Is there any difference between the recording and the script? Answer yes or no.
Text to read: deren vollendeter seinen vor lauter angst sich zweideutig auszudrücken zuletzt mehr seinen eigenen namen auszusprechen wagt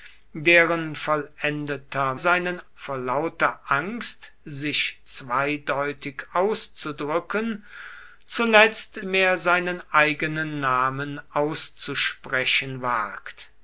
no